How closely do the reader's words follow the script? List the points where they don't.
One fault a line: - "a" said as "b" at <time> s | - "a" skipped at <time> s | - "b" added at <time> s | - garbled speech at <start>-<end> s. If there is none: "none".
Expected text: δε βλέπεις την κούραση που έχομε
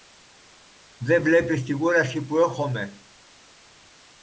none